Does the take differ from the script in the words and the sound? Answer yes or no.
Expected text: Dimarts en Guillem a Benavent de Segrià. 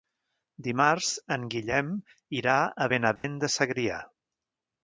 yes